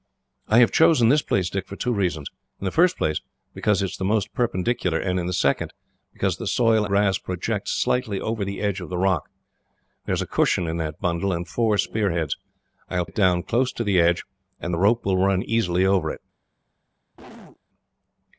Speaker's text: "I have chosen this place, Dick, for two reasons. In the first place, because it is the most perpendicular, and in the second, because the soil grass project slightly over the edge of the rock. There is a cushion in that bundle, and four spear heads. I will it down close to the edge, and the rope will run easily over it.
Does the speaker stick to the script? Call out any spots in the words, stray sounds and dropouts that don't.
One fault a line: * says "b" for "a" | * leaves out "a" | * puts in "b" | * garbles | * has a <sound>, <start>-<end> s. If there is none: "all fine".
* has a cough, 17.1-17.6 s